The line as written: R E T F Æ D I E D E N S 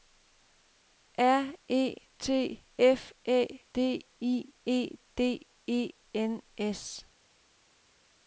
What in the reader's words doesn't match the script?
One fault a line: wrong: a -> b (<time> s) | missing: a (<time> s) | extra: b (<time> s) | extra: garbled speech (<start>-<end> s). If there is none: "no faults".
no faults